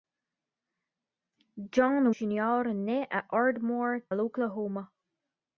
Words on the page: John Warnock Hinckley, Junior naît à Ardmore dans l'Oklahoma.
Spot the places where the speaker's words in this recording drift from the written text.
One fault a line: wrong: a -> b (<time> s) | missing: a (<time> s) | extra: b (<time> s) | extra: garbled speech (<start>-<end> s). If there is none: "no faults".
missing: Warnock Hinckley (2.1 s)
missing: dans (4.0 s)